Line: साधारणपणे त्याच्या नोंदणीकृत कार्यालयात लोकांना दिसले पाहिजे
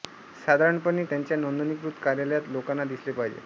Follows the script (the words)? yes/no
yes